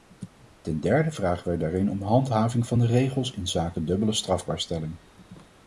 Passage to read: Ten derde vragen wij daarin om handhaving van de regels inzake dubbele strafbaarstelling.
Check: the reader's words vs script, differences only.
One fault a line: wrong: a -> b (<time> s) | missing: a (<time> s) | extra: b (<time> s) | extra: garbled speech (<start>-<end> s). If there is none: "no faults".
no faults